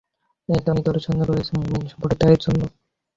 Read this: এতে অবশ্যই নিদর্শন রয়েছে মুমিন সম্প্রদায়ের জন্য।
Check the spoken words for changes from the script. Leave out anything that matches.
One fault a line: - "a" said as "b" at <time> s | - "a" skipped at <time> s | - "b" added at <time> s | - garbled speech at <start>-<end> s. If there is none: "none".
- "অবশ্যই" skipped at 0.7 s